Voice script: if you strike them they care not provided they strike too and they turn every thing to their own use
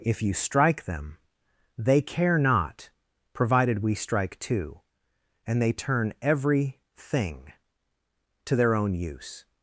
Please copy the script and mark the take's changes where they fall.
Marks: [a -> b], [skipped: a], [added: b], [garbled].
if you strike them they care not provided [they -> we] strike too and they turn every thing to their own use